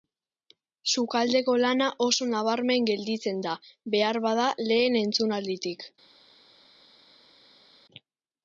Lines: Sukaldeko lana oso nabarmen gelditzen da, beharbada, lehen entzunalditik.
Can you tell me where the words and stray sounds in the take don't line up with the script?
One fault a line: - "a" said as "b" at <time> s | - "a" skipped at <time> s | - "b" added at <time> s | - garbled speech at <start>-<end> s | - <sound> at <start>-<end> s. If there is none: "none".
none